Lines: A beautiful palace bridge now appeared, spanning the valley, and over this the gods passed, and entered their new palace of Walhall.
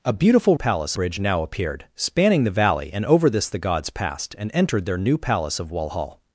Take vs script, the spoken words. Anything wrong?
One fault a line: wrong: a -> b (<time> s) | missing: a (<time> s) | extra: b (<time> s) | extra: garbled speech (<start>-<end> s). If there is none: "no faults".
no faults